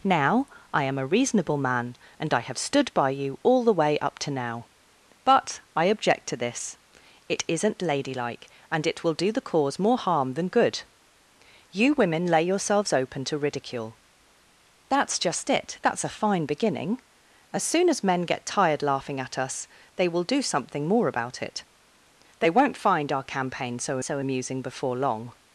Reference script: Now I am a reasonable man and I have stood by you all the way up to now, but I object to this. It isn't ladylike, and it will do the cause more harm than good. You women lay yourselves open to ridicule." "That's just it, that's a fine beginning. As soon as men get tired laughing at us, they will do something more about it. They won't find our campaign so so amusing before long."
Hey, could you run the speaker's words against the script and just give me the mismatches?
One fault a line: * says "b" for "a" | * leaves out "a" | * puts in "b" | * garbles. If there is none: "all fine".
all fine